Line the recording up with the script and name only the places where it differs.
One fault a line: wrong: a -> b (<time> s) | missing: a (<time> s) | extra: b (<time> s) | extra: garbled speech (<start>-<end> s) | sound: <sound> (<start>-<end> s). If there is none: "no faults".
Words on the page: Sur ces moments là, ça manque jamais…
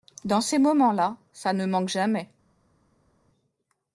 wrong: Sur -> Dans (0.2 s)
extra: ne (1.5 s)